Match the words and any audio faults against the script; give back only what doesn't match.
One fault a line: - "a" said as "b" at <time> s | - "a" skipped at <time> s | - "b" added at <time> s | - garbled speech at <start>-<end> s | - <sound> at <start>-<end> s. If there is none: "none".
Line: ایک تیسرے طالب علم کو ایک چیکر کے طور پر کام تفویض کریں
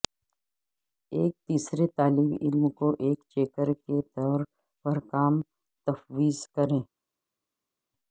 none